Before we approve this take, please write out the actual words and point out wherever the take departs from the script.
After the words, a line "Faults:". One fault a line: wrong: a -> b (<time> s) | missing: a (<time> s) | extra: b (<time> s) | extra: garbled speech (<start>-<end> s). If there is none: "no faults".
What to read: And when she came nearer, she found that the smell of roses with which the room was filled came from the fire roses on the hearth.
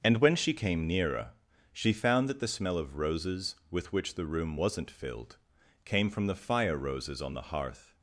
And when she came nearer, she found that the smell of roses with which the room wasn't filled came from the fire roses on the hearth.
Faults:
wrong: was -> wasn't (4.5 s)